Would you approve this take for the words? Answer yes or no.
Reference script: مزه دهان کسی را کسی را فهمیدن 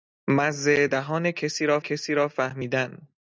yes